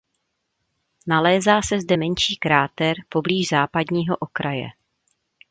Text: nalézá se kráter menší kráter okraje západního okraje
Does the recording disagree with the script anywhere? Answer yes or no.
yes